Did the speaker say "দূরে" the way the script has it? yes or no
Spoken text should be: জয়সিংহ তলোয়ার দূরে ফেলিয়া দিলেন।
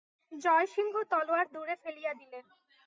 yes